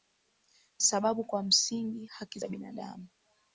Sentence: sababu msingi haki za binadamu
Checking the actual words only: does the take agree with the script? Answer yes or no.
no